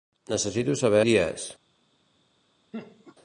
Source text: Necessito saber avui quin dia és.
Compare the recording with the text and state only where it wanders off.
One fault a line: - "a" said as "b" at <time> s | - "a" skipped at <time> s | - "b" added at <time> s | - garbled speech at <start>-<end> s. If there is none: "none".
- "avui quin" skipped at 1.0 s